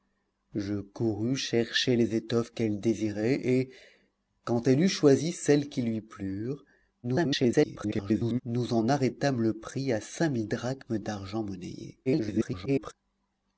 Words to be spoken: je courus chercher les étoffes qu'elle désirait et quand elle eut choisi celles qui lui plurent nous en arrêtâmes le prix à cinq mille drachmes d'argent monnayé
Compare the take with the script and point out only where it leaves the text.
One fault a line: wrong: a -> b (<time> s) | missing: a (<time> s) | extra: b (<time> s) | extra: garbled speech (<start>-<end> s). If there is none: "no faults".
extra: garbled speech (7.0-8.4 s)
extra: garbled speech (12.1-12.9 s)